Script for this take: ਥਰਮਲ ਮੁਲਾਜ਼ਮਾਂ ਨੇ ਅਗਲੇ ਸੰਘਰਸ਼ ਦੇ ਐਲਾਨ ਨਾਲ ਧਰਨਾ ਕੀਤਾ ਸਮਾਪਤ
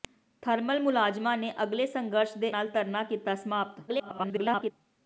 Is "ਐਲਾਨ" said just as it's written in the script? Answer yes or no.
no